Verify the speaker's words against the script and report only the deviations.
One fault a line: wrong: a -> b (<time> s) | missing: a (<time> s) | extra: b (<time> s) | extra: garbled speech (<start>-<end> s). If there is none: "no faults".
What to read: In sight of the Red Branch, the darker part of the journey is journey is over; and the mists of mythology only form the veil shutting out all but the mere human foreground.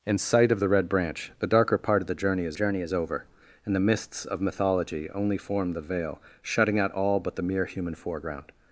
no faults